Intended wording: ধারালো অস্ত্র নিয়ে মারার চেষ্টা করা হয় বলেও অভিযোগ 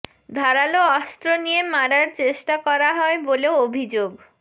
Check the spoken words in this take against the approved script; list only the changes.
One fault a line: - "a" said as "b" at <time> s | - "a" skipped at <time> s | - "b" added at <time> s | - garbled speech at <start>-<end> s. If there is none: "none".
none